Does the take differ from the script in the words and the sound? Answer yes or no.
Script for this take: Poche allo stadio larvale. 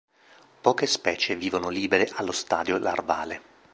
yes